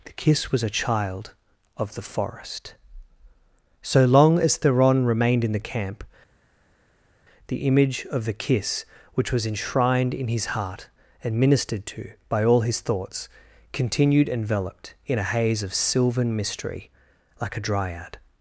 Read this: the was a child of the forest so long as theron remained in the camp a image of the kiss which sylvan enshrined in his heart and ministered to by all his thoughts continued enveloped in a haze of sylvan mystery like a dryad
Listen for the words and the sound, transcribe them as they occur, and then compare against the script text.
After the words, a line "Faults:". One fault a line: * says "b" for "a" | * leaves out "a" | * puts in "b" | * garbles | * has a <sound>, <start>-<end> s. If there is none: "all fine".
the kiss was a child of the forest so long as theron remained in the camp the image of the kiss which was enshrined in his heart and ministered to by all his thoughts continued enveloped in a haze of sylvan mystery like a dryad
Faults:
* puts in "kiss"
* says "the" for "a"
* says "was" for "sylvan"